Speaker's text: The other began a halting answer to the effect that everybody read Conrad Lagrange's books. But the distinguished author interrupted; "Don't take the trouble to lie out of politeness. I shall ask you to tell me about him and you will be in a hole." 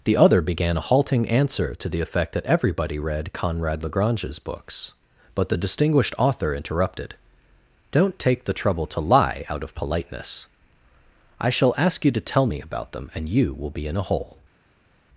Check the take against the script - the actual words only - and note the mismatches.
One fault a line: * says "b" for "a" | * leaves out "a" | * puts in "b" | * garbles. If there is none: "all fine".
* says "them" for "him"